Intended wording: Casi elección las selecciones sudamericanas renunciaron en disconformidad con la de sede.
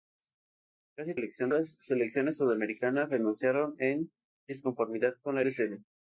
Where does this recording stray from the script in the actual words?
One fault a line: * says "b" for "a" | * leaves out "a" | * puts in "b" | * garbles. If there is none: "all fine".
all fine